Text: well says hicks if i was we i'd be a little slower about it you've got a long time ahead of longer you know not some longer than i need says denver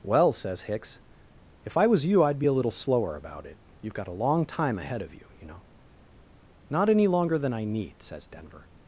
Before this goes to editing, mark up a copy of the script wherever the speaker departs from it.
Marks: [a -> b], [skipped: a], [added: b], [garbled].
well says hicks if i was [we -> you] i'd be a little slower about it you've got a long time ahead of [longer -> you] you know not [some -> any] longer than i need says denver